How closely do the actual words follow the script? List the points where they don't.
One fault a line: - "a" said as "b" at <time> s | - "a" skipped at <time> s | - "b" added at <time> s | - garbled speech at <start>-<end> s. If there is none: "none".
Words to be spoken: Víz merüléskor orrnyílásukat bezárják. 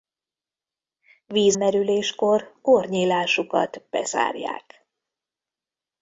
none